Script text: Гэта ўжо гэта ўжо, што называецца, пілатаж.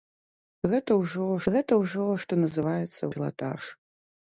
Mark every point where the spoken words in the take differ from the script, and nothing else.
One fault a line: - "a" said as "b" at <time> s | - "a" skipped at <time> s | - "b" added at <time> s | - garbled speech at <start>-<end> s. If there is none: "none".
none